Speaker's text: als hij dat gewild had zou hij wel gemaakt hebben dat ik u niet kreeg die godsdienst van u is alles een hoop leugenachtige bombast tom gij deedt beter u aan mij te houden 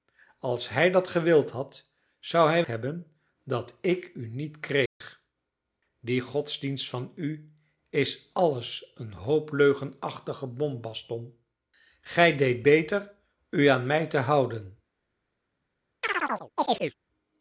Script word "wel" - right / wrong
wrong